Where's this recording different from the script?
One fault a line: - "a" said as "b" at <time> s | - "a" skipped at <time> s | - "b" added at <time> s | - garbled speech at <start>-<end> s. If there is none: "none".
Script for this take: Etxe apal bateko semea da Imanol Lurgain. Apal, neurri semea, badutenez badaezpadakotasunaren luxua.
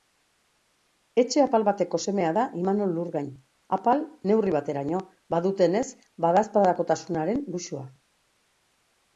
- "semea" said as "bateraino" at 4.6 s